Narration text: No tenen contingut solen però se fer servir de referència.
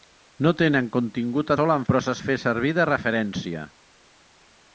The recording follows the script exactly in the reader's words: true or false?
true